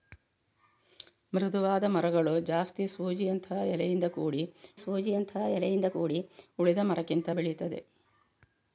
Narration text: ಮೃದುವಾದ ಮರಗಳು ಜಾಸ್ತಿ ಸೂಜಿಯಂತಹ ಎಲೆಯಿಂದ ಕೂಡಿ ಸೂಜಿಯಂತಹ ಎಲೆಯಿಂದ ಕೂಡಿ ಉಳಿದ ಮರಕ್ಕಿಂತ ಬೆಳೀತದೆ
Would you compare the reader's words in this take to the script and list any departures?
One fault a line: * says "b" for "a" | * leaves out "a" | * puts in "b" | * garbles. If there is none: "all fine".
all fine